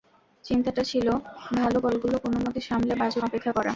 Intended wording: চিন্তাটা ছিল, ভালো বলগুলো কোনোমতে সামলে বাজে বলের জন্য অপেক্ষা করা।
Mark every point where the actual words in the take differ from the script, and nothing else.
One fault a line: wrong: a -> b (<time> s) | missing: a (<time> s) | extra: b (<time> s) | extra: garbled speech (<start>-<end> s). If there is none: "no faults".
missing: বলের জন্য (3.2 s)